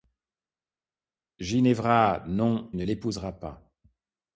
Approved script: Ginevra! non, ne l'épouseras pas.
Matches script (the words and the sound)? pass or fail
pass